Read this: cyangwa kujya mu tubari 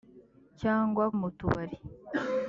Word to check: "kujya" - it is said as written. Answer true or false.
false